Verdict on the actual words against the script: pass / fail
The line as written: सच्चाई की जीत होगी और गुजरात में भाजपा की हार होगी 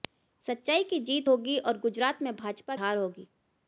fail